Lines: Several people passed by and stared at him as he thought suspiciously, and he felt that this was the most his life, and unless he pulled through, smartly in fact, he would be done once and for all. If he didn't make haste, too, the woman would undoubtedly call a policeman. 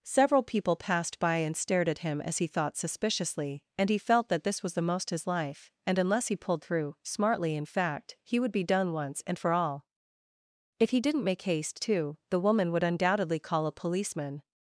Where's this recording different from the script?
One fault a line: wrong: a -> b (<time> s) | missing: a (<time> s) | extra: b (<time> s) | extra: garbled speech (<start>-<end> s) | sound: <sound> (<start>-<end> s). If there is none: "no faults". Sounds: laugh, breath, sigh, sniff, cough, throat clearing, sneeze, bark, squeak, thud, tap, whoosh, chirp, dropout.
no faults